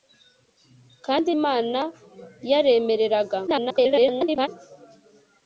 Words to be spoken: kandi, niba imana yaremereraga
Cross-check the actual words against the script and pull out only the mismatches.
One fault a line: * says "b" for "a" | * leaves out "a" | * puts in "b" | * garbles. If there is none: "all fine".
* leaves out "niba"
* garbles